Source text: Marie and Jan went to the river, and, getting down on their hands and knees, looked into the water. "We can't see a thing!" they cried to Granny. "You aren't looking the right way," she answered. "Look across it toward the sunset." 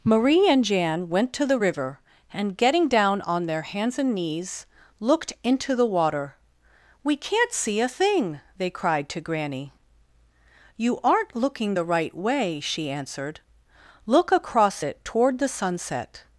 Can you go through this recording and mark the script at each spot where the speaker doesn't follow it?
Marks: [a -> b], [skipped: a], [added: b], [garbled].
Marie and Jan went to the river, and, getting down on their hands and knees, looked into the water. "We can't see a thing!" they cried to Granny. "You aren't looking the right way," she answered. "Look across it toward the sunset."